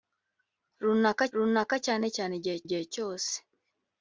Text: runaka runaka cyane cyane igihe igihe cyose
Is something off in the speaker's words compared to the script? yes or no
no